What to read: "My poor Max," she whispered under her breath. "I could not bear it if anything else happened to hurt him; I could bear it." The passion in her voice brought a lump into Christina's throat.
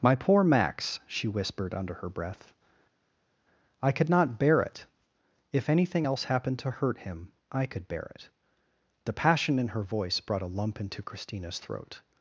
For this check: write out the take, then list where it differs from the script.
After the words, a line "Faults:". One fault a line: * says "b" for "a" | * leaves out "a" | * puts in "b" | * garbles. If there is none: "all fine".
"My poor Max," she whispered under her breath. "I could not bear it if anything else happened to hurt him; I could bear it." The passion in her voice brought a lump into Christina's throat.
Faults:
all fine